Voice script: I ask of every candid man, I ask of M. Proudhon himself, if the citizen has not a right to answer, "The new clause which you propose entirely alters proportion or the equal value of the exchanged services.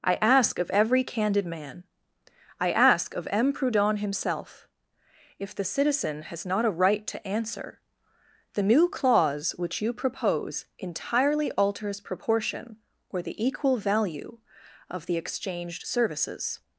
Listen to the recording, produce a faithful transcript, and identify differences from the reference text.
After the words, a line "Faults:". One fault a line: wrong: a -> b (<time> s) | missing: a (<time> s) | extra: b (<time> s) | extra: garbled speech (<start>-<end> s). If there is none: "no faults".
I ask of every candid man, I ask of M. Proudhon himself, if the citizen has not a right to answer, "The new clause which you propose entirely alters proportion or the equal value of the exchanged services.
Faults:
no faults